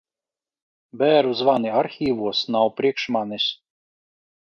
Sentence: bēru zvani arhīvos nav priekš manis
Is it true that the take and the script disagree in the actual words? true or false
false